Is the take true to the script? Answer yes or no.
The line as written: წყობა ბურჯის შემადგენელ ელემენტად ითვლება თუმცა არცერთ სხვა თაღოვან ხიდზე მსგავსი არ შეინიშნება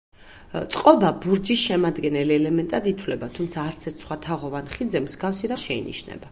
yes